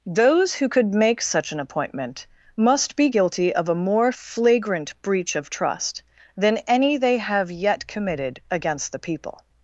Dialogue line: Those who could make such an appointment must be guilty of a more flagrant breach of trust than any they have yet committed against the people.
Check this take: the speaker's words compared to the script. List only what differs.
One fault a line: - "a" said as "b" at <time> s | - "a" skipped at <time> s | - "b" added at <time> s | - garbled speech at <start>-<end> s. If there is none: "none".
none